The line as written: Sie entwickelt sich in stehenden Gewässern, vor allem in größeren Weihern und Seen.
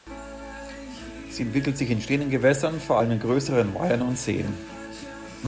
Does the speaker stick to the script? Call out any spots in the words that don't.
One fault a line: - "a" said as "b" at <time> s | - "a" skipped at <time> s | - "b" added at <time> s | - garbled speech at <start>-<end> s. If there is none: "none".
none